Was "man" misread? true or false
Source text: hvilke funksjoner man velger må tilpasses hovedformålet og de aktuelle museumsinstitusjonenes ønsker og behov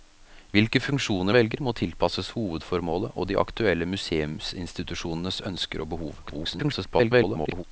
true